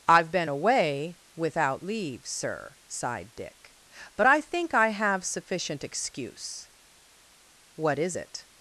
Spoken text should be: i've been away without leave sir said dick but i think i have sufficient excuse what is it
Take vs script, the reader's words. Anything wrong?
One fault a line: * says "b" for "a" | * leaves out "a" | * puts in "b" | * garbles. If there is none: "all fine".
* says "sighed" for "said"